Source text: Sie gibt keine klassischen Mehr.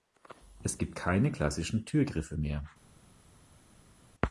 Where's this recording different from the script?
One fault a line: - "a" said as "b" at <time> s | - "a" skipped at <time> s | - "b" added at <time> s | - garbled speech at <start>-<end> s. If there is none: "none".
- "Sie" said as "Es" at 0.6 s
- "Türgriffe" added at 1.9 s